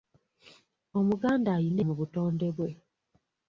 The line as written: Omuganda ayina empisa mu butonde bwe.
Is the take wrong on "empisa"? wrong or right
wrong